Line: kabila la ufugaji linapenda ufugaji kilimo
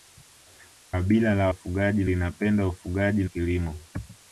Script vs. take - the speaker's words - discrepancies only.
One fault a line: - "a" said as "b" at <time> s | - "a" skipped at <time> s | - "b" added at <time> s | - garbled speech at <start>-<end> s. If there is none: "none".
none